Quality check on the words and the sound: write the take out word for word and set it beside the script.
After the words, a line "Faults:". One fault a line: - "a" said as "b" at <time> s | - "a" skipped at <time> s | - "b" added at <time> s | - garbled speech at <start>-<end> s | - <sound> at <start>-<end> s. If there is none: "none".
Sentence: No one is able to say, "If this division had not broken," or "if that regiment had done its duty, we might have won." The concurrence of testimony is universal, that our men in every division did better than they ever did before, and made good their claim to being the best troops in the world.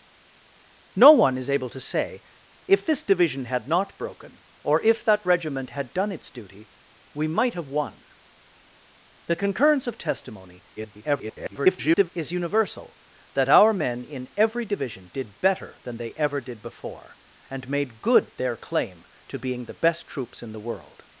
No one is able to say, "If this division had not broken," or "if that regiment had done its duty, we might have won." The concurrence of testimony [garbled] is universal, that our men in every division did better than they ever did before, and made good their claim to being the best troops in the world.
Faults:
- garbled speech at 10.8-12.1 s